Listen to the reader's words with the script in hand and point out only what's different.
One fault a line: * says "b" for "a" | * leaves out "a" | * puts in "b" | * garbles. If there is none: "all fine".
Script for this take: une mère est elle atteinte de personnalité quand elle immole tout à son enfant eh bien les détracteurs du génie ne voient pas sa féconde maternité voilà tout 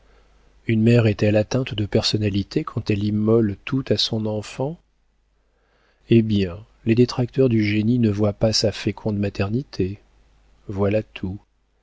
all fine